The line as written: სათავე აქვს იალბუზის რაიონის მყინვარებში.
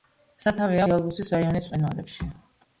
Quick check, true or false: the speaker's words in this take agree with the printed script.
false